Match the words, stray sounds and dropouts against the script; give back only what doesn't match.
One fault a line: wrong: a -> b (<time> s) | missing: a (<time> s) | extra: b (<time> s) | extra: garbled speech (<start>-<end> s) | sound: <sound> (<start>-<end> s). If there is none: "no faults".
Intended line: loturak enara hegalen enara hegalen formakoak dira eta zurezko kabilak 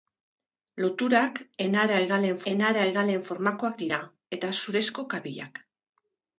no faults